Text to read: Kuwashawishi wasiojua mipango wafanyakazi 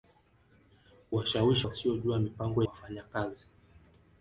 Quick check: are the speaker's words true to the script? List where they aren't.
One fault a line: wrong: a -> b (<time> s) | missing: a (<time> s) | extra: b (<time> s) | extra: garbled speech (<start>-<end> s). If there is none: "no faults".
no faults